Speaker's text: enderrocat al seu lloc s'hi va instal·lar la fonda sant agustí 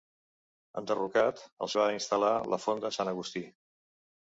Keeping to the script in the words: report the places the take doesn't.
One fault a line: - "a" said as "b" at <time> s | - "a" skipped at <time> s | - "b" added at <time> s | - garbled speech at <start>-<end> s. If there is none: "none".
- "seu lloc s'hi" skipped at 1.7 s